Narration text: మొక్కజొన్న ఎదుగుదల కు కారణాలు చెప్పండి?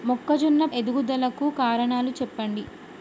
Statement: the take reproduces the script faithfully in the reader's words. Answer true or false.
true